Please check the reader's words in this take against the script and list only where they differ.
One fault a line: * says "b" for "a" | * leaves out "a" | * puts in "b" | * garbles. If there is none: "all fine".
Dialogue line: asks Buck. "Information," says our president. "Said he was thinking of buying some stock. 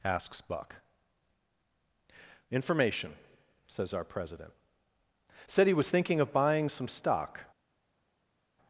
all fine